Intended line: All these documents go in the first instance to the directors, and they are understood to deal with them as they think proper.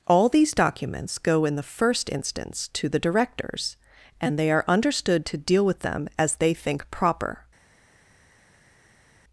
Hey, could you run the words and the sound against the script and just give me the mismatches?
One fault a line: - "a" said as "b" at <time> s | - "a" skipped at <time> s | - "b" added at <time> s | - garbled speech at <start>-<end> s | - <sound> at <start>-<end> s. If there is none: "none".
none